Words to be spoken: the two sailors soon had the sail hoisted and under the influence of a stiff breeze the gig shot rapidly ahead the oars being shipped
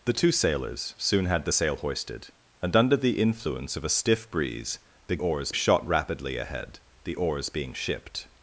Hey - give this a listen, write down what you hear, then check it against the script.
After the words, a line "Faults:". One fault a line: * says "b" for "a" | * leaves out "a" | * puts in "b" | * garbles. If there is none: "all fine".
the two sailors soon had the sail hoisted and under the influence of a stiff breeze the oars shot rapidly ahead the oars being shipped
Faults:
* says "oars" for "gig"